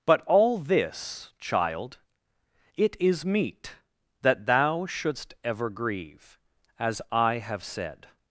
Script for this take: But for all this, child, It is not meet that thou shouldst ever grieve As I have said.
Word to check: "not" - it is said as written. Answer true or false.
false